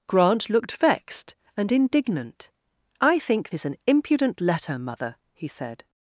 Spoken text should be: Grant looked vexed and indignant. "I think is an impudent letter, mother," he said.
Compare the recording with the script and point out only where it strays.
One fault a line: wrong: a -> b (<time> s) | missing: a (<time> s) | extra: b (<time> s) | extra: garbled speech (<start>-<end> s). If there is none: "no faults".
no faults